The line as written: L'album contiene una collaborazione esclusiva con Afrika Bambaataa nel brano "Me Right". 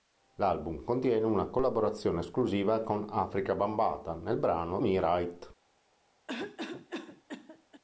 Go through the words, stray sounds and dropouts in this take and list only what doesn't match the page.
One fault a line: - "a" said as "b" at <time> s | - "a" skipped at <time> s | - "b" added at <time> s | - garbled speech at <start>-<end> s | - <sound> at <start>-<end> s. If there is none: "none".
- cough at 6.3-7.8 s